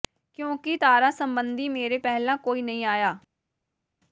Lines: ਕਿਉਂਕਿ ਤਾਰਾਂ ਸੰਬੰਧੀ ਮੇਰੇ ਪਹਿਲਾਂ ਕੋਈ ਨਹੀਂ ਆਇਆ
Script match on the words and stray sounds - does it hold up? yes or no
yes